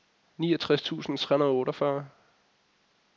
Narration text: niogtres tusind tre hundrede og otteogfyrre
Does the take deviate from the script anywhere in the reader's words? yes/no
no